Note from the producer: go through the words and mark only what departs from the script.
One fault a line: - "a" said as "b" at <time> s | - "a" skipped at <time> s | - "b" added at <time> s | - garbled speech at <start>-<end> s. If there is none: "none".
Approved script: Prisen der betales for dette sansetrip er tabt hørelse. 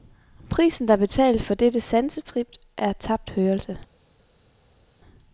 none